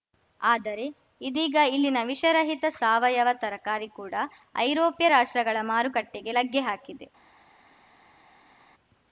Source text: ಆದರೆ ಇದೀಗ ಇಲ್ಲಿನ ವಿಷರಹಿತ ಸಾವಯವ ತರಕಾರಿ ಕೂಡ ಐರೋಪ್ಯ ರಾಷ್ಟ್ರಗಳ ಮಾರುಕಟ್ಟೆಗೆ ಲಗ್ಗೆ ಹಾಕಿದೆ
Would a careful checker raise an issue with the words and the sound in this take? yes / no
no